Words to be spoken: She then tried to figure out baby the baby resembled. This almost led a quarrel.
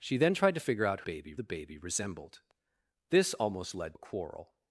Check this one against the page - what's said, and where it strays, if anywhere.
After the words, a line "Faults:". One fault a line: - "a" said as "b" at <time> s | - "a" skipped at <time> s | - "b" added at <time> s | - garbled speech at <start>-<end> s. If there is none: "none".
She then tried to figure out baby the baby resembled. This almost led a quarrel.
Faults:
none